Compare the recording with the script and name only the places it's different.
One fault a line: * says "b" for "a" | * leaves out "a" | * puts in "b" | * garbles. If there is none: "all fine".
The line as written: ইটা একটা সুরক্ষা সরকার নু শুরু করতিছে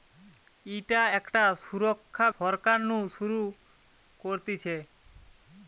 all fine